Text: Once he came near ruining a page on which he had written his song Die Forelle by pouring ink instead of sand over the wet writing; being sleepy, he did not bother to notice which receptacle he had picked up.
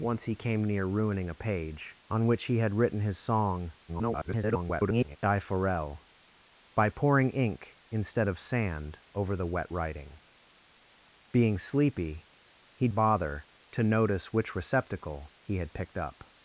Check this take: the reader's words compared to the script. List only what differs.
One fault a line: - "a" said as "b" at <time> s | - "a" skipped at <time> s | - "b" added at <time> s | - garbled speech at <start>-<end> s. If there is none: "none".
- garbled speech at 3.9-5.2 s
- "did not" skipped at 12.9 s